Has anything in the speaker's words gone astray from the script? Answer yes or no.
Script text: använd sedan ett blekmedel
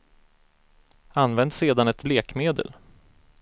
no